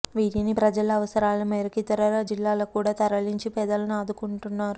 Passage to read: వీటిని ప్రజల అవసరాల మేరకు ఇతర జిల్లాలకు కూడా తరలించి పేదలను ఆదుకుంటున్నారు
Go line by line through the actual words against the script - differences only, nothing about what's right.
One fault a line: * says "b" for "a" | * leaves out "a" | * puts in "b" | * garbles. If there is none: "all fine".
all fine